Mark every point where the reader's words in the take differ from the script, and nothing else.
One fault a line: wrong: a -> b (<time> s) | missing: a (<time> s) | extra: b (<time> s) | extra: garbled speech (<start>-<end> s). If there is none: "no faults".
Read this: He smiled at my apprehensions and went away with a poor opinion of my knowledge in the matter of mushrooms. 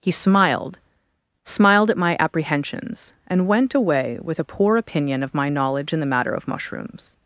extra: smiled (1.4 s)